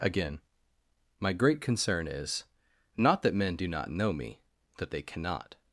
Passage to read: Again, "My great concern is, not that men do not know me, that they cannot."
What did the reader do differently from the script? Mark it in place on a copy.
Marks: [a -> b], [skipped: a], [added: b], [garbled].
Again, "My great concern is, not that men do not know me, that they cannot."